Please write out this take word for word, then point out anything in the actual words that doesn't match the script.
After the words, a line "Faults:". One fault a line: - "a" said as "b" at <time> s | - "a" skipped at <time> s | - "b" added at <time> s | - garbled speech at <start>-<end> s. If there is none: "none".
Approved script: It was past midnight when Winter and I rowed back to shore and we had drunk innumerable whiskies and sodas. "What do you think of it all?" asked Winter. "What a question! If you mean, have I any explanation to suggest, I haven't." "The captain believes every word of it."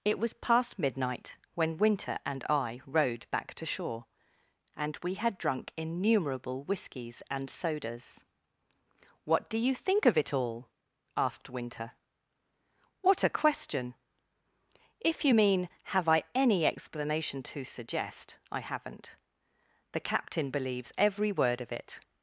It was past midnight when Winter and I rowed back to shore and we had drunk innumerable whiskies and sodas. "What do you think of it all?" asked Winter. "What a question! If you mean, have I any explanation to suggest, I haven't." "The captain believes every word of it."
Faults:
none